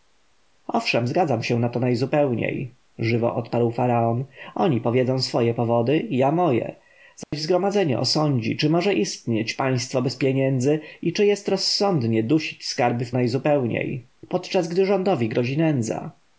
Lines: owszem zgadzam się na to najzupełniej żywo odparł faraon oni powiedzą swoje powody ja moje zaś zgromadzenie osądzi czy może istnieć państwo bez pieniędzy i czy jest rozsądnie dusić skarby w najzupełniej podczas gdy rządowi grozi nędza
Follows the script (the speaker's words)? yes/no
yes